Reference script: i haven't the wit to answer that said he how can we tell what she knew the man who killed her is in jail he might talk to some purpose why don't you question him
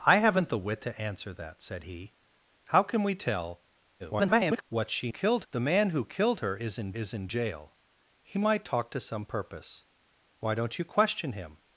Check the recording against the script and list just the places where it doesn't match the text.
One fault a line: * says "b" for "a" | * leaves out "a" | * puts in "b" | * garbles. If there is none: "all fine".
* garbles
* says "killed" for "knew"
* puts in "is in"